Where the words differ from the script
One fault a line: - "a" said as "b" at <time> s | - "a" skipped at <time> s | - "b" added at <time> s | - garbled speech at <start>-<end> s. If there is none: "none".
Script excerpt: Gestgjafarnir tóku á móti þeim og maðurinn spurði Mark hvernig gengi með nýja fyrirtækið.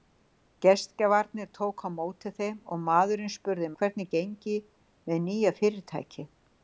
- "Mark" skipped at 3.7 s